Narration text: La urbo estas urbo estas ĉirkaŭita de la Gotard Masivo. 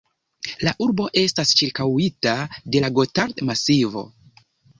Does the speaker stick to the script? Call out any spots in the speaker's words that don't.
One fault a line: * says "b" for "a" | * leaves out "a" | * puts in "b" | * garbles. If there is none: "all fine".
* leaves out "urbo estas"